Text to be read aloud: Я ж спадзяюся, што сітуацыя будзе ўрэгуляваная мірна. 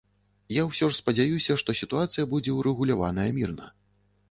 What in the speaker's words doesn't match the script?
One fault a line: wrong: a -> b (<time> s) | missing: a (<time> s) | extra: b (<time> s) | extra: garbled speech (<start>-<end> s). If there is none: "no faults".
extra: ўсё (0.7 s)